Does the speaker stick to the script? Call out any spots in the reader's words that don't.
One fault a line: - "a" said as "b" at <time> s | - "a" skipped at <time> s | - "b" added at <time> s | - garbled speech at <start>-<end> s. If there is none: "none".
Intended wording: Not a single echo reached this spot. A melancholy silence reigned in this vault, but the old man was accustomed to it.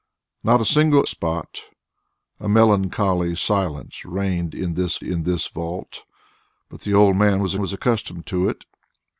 - "echo reached this" skipped at 1.1 s
- "in this" added at 5.0 s
- "was" added at 7.6 s